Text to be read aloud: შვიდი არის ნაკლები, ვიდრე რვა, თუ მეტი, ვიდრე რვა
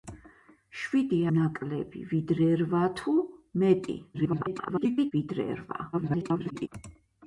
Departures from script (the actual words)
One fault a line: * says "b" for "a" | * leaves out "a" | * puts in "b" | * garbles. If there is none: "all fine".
* leaves out "არის"
* garbles
* garbles